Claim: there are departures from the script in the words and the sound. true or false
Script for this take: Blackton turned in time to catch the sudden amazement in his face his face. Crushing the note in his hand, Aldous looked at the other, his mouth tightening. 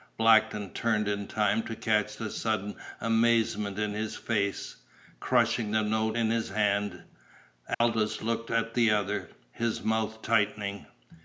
true